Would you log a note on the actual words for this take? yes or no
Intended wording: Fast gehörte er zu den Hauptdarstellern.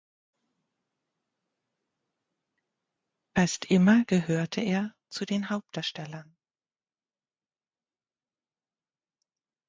yes